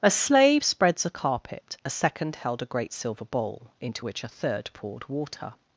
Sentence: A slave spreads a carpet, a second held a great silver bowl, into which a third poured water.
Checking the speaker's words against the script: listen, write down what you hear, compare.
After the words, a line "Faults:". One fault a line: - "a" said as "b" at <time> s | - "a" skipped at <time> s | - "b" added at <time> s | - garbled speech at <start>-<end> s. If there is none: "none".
A slave spreads a carpet, a second held a great silver bowl, into which a third poured water.
Faults:
none